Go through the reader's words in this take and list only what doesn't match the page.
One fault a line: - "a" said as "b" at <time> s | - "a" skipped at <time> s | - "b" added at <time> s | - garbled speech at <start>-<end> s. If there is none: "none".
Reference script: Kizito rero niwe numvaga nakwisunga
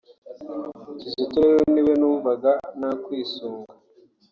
none